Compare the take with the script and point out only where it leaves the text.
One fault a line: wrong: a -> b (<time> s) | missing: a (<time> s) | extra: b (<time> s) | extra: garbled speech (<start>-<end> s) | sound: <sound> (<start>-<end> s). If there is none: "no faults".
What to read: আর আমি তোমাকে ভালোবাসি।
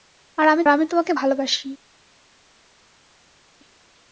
extra: আমি (0.7 s)